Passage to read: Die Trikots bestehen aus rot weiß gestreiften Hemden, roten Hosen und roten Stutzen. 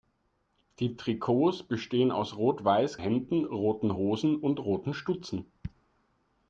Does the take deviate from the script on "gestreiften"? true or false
true